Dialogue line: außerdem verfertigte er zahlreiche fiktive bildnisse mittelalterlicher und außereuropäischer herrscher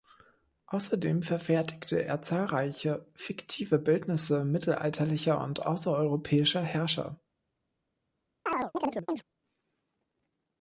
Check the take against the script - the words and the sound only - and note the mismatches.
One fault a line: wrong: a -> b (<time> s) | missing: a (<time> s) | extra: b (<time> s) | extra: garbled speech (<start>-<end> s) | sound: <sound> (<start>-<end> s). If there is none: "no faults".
sound: chirp (8.5-9.2 s)